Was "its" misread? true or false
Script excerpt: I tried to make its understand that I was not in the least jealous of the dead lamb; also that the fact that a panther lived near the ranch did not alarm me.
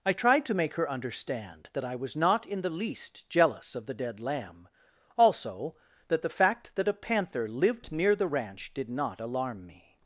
true